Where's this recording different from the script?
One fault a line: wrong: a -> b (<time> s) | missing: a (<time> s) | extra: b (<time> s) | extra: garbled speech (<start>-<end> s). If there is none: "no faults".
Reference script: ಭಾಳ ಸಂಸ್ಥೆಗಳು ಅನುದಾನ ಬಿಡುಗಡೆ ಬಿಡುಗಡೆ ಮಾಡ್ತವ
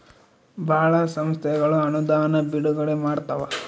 missing: ಬಿಡುಗಡೆ (3.0 s)